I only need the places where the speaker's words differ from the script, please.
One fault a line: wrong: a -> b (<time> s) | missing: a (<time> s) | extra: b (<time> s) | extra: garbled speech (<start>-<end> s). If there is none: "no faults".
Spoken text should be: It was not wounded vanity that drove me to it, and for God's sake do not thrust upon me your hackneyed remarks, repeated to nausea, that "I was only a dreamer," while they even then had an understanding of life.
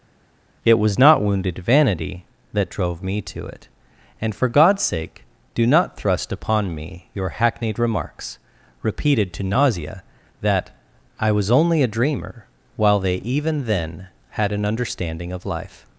no faults